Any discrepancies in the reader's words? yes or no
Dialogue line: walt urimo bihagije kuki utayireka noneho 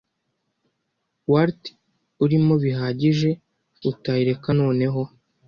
yes